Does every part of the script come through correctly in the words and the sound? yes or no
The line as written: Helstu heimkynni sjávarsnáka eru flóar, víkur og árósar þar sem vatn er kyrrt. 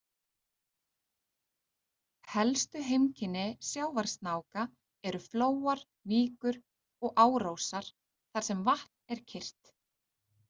yes